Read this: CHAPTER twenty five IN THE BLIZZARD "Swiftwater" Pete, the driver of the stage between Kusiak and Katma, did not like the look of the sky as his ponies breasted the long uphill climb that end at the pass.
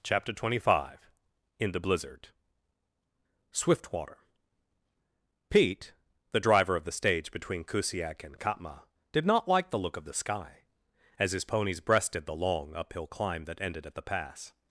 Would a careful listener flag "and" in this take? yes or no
no